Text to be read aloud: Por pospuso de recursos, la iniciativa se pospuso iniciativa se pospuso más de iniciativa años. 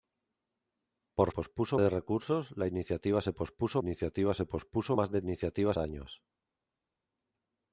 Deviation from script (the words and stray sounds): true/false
false